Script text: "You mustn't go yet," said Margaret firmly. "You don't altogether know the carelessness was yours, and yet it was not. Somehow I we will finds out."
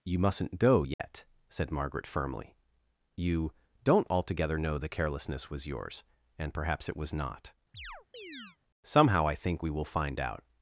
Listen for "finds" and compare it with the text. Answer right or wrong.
wrong